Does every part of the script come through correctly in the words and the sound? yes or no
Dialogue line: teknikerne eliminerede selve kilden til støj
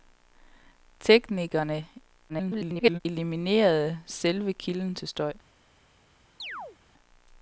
no